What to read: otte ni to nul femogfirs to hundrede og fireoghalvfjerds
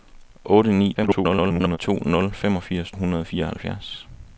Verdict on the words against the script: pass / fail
fail